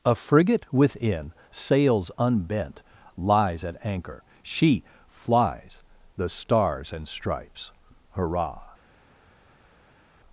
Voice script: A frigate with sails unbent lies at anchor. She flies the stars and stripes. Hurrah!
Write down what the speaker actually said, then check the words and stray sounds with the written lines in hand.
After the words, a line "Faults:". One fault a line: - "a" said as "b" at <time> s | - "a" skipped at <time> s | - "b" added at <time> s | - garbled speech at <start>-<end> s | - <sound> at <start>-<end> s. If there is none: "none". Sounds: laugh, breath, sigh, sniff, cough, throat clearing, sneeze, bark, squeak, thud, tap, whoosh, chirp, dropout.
A frigate within sails unbent lies at anchor. She flies the stars and stripes. Hurrah!
Faults:
- "with" said as "within" at 0.7 s